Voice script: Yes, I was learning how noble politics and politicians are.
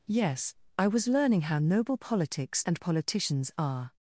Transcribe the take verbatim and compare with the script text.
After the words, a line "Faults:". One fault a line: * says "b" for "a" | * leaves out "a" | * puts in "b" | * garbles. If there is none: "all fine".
Yes, I was learning how noble politics and politicians are.
Faults:
all fine